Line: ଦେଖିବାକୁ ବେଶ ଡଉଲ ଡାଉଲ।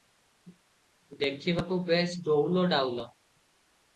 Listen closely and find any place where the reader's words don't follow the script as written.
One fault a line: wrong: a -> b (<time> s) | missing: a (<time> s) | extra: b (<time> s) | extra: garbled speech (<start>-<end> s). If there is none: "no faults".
no faults